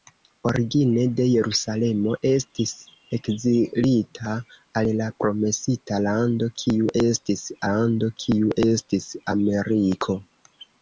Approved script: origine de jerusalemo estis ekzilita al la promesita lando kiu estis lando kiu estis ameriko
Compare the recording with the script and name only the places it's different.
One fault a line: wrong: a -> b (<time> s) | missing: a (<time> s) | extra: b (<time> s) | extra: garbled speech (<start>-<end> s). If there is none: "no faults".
no faults